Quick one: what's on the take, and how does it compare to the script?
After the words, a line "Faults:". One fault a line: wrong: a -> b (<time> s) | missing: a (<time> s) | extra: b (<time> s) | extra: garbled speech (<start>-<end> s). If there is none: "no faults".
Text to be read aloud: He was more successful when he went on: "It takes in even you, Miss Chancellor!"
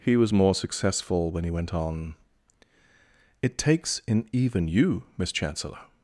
He was more successful when he went on: "It takes in even you, Miss Chancellor!"
Faults:
no faults